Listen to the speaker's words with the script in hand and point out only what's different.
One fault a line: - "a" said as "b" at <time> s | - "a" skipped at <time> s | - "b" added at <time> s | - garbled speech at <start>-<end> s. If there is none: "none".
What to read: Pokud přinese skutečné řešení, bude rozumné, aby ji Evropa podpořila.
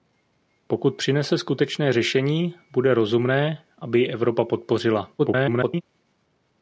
- garbled speech at 5.2-5.8 s